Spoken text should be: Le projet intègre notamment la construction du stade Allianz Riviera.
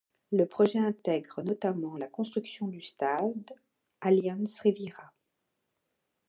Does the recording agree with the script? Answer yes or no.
yes